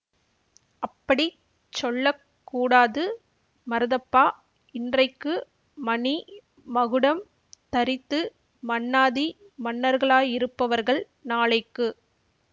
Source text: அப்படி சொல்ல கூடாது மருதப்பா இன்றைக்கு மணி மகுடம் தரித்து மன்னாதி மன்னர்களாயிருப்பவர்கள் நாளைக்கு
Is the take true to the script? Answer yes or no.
yes